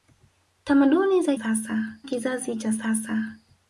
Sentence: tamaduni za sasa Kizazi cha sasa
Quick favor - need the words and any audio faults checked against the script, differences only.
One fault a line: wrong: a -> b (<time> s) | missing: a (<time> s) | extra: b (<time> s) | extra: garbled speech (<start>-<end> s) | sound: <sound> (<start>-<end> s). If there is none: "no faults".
no faults